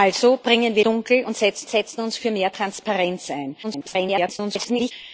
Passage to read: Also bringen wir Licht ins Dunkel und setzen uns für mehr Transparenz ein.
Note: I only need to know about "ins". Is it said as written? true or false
false